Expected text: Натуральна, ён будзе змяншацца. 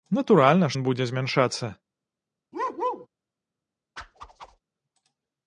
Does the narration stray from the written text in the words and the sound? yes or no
yes